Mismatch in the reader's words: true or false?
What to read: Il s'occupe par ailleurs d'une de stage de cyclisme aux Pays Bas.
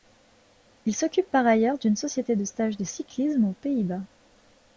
true